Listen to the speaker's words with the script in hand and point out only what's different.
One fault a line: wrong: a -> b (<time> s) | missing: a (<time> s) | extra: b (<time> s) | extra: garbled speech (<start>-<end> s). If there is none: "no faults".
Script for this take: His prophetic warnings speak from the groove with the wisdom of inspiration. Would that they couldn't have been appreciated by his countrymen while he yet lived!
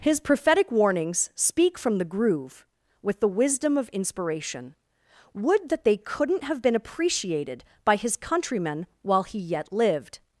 no faults